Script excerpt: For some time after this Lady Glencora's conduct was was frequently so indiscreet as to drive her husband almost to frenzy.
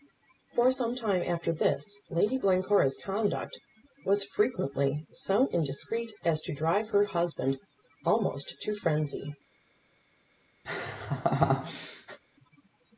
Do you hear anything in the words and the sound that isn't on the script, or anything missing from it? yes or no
yes